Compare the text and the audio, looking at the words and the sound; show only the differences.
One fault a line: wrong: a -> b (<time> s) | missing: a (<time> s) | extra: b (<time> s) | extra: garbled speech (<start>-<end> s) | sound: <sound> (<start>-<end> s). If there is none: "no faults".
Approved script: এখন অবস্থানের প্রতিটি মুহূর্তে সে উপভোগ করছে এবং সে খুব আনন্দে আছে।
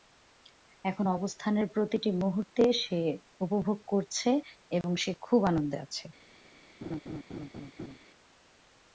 sound: dropout (4.8-4.8 s)
sound: laugh (6.8-8.0 s)